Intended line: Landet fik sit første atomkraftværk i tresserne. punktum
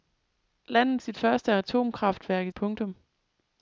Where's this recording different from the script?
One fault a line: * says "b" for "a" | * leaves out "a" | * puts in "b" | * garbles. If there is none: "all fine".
* leaves out "fik"
* leaves out "tresserne"